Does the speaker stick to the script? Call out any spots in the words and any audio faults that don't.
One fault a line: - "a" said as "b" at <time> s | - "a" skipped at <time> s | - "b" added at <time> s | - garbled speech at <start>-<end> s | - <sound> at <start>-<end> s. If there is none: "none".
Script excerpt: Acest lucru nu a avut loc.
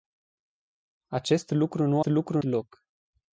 - "avut" said as "lucru" at 2.0 s